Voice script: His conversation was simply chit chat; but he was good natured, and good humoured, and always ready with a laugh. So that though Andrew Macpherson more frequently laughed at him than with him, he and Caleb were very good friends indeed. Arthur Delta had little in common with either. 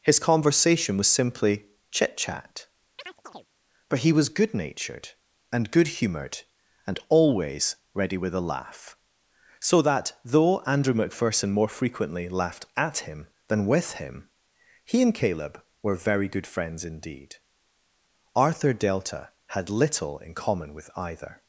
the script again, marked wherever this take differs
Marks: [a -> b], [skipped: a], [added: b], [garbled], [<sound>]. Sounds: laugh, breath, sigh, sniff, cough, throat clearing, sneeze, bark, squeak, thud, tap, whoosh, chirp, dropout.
His conversation was simply chit chat; [chirp] but he was good natured, and good humoured, and always ready with a laugh. So that though Andrew Macpherson more frequently laughed at him than with him, he and Caleb were very good friends indeed. Arthur Delta had little in common with either.